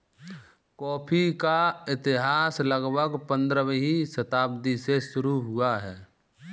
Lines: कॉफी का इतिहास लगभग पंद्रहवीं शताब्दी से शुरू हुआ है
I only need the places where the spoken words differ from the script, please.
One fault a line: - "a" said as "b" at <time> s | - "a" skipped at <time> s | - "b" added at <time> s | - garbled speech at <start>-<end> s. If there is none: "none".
none